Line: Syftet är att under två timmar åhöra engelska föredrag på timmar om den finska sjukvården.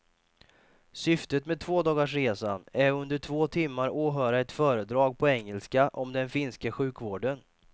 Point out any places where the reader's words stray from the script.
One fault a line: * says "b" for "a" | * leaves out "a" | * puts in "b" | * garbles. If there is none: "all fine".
* puts in "med tvådagarsresan"
* says "ett" for "engelska"
* says "engelska" for "timmar"